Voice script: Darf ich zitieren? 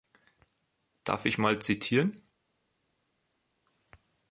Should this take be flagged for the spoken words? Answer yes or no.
yes